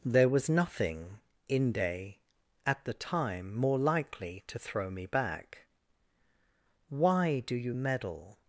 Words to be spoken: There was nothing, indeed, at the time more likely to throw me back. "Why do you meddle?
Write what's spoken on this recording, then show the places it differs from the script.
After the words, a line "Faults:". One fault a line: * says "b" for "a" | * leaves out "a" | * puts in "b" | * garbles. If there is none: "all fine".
There was nothing, inde, at the time more likely to throw me back. "Why do you meddle?
Faults:
* says "inde" for "indeed"